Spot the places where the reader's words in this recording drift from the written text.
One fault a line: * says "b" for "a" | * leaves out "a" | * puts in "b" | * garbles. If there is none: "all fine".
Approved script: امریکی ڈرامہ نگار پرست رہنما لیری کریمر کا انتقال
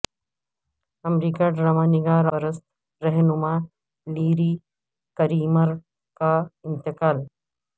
all fine